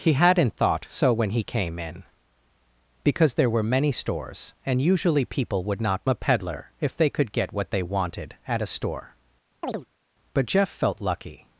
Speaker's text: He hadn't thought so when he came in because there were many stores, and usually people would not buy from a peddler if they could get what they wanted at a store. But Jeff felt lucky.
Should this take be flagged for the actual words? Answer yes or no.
yes